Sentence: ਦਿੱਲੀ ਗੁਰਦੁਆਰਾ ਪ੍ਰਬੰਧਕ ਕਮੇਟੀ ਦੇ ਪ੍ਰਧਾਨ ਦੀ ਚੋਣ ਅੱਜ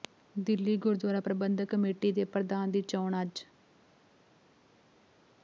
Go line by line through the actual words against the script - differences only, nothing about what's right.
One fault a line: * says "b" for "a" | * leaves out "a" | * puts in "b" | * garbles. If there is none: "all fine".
all fine